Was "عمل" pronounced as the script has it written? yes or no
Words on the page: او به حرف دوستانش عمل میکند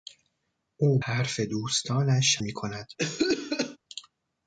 no